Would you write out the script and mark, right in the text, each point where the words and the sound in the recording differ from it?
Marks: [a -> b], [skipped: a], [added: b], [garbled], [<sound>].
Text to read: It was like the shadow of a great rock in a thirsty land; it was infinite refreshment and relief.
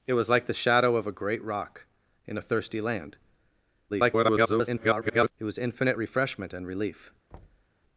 It was like the shadow of a great rock in a thirsty land; [garbled] it was infinite refreshment and relief. [thud]